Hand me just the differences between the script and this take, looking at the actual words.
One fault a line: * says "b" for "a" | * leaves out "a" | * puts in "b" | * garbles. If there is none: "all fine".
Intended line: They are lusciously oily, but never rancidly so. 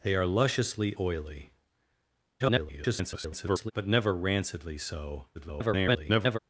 * garbles
* garbles